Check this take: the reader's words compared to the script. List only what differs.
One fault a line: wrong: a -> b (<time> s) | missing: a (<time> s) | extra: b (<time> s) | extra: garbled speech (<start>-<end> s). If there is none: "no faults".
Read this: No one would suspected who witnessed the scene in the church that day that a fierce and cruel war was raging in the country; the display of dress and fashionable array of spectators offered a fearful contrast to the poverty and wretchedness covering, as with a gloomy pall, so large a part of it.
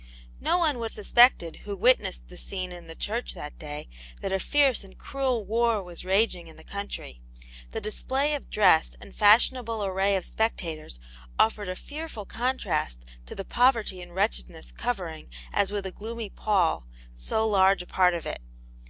no faults